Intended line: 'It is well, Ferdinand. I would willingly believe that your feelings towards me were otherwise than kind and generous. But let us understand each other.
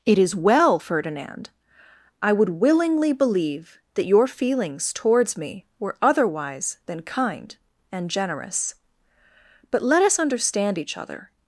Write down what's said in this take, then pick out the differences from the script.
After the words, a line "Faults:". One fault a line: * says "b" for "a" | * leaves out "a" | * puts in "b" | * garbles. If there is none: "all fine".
'It is well, Ferdinand. I would willingly believe that your feelings towards me were otherwise than kind and generous. But let us understand each other.
Faults:
all fine